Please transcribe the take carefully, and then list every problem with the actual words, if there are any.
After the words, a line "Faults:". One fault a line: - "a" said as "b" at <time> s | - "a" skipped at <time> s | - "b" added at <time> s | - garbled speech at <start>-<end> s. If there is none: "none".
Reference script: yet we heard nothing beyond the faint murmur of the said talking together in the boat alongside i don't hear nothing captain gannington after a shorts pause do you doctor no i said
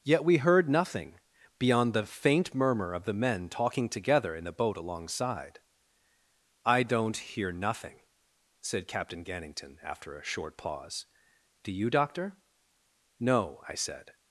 yet we heard nothing beyond the faint murmur of the men talking together in the boat alongside i don't hear nothing said captain gannington after a short pause do you doctor no i said
Faults:
- "said" said as "men" at 3.1 s
- "said" added at 8.6 s
- "shorts" said as "short" at 10.2 s